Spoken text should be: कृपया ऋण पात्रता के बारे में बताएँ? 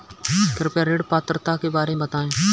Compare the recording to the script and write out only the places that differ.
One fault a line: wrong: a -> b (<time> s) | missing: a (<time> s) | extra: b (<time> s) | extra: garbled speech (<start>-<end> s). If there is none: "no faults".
no faults